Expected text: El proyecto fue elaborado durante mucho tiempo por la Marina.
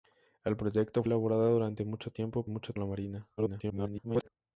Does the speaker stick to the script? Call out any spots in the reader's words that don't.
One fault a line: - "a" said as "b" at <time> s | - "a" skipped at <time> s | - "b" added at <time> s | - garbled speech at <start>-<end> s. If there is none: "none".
- "fue" skipped at 1.0 s
- "por" said as "mucho" at 2.5 s
- garbled speech at 3.4-4.3 s